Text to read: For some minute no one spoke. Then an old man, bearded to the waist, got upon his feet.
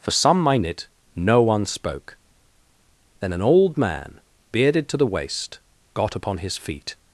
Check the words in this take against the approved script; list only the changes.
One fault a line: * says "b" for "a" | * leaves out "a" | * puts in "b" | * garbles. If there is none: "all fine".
all fine